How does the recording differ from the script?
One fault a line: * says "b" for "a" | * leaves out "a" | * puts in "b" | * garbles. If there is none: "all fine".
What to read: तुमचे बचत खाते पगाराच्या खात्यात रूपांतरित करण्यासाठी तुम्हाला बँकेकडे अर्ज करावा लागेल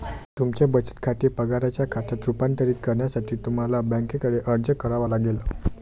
all fine